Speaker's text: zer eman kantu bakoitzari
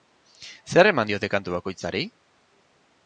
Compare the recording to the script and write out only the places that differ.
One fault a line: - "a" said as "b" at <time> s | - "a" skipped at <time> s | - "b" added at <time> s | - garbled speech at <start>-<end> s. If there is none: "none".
- "diote" added at 1.1 s